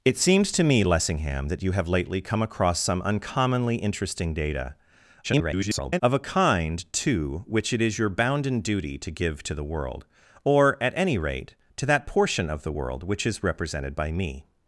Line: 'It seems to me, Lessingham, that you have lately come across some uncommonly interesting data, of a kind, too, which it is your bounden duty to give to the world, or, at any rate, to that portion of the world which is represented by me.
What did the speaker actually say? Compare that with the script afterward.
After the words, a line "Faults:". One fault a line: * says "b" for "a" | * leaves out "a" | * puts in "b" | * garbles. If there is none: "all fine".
'It seems to me, Lessingham, that you have lately come across some uncommonly interesting data, [garbled] of a kind, too, which it is your bounden duty to give to the world, or, at any rate, to that portion of the world which is represented by me.
Faults:
* garbles